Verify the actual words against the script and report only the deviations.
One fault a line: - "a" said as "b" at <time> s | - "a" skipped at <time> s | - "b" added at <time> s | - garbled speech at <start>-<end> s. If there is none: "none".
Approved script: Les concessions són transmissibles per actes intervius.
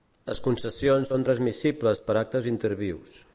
none